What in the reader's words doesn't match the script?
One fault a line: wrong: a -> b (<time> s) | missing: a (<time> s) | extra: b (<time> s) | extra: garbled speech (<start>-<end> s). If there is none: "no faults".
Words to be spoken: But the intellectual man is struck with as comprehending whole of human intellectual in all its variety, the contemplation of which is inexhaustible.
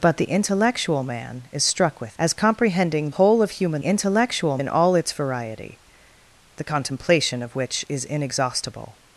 no faults